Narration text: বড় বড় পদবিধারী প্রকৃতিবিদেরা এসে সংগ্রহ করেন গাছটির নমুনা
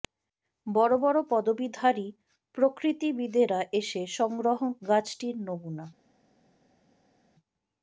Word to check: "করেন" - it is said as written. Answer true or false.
false